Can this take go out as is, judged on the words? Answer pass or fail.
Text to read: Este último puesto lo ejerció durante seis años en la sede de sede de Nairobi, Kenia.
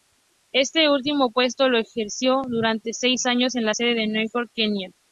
fail